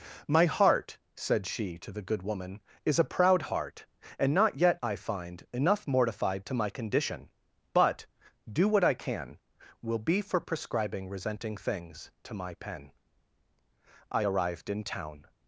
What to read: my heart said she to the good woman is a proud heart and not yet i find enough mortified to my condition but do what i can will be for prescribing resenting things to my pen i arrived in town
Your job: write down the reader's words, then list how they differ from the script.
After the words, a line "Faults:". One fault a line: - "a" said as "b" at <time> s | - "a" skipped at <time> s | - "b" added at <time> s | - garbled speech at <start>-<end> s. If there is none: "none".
my heart said she to the good woman is a proud heart and not yet i find enough mortified to my condition but do what i can will be for prescribing resenting things to my pen i arrived in town
Faults:
none